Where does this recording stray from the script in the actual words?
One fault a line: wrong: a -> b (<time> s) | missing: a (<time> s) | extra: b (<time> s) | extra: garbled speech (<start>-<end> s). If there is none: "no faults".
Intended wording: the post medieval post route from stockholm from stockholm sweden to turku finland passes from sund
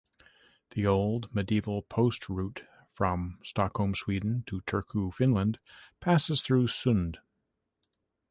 wrong: post -> old (0.9 s)
missing: from stockholm (3.9 s)
wrong: from -> through (6.4 s)